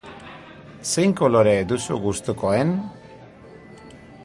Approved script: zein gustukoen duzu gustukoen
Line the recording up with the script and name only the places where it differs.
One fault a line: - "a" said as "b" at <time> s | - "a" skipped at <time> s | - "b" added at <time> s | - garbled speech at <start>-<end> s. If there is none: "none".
- "gustukoen" said as "kolore" at 1.2 s